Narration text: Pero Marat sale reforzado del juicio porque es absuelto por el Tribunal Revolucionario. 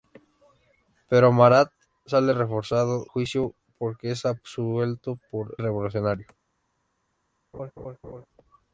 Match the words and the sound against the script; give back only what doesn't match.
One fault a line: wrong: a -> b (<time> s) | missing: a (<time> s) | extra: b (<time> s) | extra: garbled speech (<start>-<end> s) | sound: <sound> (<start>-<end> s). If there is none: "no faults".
missing: del (3.0 s)
missing: el Tribunal (5.6 s)
sound: laugh (7.5-8.3 s)